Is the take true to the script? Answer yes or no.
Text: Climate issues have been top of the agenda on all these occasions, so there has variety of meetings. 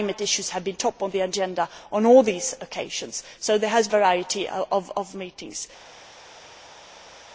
yes